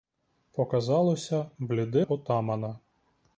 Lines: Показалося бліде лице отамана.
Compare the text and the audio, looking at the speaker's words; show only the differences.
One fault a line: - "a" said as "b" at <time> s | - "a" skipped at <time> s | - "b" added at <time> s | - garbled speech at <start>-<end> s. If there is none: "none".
- "лице" skipped at 2.1 s